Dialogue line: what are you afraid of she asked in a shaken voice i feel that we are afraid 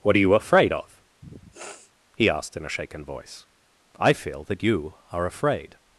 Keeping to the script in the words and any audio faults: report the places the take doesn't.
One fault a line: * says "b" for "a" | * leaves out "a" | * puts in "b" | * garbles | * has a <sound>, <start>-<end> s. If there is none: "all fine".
* has a sniff, 1.2-1.9 s
* says "he" for "she"
* says "you" for "we"